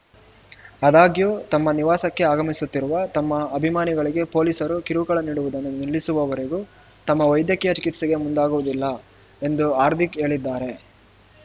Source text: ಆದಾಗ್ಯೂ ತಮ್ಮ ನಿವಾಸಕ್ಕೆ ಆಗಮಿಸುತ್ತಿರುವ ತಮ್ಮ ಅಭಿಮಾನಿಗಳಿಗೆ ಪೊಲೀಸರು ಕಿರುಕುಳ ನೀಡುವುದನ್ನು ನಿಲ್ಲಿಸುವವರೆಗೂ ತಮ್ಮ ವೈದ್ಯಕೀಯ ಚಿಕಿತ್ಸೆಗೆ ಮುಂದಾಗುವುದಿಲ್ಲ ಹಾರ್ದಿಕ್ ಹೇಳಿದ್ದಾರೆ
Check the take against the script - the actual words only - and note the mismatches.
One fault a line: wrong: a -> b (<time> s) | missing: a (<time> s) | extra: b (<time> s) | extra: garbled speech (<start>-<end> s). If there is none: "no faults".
extra: ಎಂದು (9.4 s)